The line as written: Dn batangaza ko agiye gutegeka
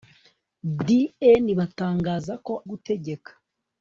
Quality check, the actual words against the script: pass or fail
fail